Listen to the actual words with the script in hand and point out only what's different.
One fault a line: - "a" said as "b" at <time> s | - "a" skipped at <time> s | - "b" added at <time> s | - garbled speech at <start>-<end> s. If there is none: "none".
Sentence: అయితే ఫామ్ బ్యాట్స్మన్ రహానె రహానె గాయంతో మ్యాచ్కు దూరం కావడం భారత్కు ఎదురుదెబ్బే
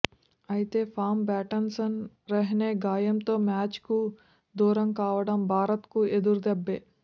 - "రహానె" skipped at 2.7 s